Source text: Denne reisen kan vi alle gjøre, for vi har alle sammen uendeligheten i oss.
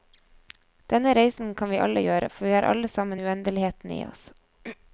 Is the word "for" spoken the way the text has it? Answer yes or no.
yes